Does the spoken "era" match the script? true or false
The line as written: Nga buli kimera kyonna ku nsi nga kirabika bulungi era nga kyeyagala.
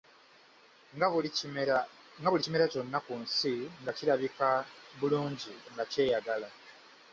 false